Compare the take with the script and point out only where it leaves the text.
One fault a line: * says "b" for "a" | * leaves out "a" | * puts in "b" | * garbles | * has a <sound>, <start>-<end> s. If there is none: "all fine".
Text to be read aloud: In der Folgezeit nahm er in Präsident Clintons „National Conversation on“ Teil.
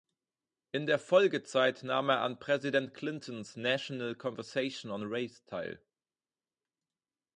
* says "an" for "in"
* puts in "Race"